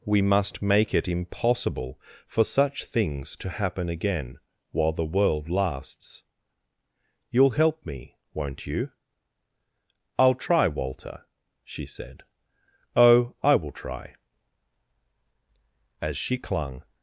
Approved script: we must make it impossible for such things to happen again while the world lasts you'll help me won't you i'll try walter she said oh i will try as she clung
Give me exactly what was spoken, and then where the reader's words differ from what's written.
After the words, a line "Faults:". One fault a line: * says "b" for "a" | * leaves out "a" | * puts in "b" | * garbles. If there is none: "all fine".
we must make it impossible for such things to happen again while the world lasts you'll help me won't you i'll try walter she said oh i will try as she clung
Faults:
all fine